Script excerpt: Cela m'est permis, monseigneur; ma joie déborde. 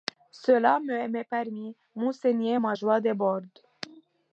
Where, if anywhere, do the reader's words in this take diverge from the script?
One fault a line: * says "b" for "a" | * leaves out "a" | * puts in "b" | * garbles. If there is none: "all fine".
all fine